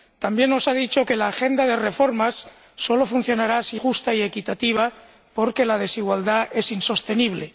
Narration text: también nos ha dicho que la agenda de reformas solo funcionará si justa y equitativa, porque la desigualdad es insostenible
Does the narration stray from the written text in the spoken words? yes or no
no